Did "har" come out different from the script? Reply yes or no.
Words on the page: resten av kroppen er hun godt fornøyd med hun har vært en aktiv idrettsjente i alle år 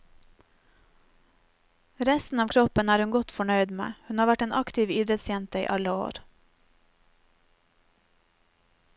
no